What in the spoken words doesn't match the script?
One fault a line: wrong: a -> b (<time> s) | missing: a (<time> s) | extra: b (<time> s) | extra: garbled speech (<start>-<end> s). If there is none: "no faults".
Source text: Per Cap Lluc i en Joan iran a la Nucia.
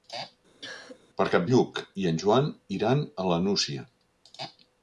no faults